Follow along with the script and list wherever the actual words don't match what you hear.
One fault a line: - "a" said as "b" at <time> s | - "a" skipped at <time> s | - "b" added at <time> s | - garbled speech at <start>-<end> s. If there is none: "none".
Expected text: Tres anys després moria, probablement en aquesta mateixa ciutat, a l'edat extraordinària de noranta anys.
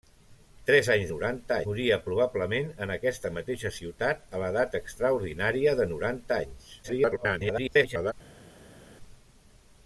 - "després" said as "noranta" at 1.1 s
- garbled speech at 6.8-8.1 s